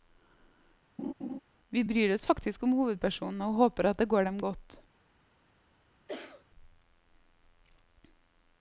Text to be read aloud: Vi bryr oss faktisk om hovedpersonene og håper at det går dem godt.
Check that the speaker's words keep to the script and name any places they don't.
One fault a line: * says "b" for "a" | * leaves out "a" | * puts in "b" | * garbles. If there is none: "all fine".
all fine